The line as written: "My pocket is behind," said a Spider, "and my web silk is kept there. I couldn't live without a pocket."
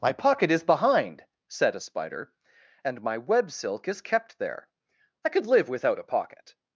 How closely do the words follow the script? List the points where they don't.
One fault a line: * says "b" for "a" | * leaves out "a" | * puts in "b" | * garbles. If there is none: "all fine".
* says "could" for "couldn't"